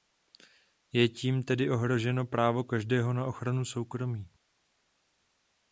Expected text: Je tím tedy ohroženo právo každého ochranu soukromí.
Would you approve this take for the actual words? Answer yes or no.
no